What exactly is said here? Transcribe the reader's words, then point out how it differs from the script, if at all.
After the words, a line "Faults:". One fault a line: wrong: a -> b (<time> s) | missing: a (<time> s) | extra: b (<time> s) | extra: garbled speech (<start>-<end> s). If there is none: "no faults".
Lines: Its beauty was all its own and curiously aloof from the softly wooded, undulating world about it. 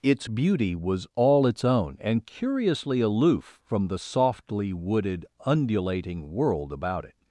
Its beauty was all its own and curiously aloof from the softly wooded, undulating world about it.
Faults:
no faults